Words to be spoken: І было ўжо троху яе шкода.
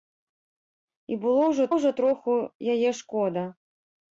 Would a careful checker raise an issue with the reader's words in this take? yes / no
yes